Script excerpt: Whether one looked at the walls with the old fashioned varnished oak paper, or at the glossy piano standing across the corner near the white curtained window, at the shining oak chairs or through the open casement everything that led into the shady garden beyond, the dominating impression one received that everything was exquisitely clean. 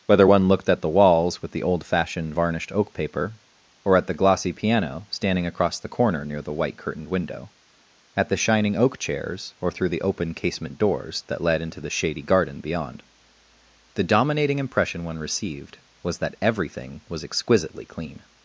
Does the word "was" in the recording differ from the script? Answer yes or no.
no